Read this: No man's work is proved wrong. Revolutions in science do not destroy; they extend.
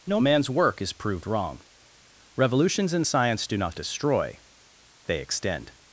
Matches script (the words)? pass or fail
pass